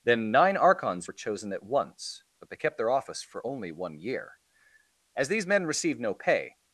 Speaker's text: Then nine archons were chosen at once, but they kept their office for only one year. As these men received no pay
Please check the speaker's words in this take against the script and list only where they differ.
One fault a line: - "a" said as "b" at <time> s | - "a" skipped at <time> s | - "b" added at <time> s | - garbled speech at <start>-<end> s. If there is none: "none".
none